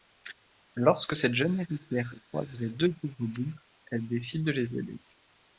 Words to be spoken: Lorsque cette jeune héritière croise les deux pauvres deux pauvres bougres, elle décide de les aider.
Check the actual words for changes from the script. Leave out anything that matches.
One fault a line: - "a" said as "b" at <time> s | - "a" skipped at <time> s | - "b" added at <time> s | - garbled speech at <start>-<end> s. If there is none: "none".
- "deux pauvres" skipped at 3.3 s